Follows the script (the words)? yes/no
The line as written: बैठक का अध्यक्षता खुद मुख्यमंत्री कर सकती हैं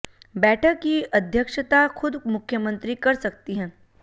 no